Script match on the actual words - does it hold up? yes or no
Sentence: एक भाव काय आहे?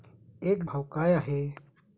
yes